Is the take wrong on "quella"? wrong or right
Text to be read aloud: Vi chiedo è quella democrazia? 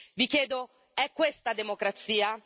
wrong